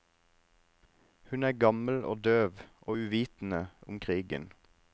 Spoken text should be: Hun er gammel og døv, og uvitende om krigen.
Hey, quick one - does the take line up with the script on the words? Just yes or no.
yes